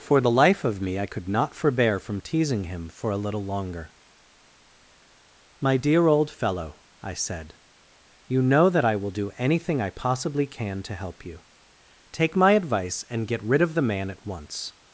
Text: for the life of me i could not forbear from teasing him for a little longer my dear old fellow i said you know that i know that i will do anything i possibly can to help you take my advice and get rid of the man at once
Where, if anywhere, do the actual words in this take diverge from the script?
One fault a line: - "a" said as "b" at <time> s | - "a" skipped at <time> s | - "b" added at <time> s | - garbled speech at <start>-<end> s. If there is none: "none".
- "know that i" skipped at 9.0 s